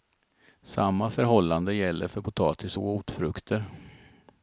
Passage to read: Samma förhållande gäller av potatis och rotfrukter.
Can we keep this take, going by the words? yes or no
no